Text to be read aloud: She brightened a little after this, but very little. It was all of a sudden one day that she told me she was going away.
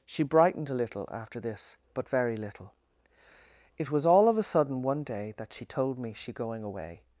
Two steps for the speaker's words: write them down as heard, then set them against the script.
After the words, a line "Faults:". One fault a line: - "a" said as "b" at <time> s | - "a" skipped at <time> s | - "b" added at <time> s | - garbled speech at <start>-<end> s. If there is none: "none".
She brightened a little after this, but very little. It was all of a sudden one day that she told me she going away.
Faults:
- "was" skipped at 6.3 s